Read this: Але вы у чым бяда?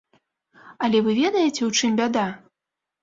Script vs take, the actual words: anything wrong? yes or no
yes